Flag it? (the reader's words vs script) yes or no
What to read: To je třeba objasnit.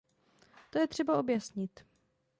no